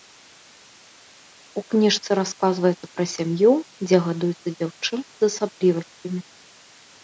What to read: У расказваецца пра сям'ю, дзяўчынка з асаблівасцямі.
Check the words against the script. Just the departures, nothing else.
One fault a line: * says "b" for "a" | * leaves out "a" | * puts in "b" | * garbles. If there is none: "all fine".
* puts in "кніжцы"
* puts in "дзе гадуецца"